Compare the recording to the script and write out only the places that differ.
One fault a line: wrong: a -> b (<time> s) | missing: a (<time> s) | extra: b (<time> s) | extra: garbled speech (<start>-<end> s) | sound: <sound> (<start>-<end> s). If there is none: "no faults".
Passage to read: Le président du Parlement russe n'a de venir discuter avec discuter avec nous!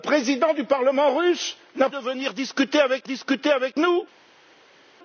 no faults